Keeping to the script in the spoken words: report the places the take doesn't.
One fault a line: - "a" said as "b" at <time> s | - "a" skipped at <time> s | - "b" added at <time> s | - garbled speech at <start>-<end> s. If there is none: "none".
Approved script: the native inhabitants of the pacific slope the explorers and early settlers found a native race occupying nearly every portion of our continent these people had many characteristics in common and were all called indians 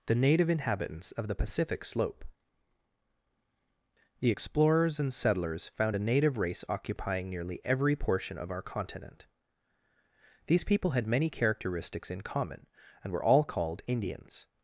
- "early" skipped at 5.1 s